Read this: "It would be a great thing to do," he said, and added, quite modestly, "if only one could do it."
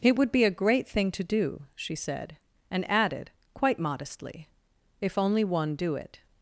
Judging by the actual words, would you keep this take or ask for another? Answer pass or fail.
fail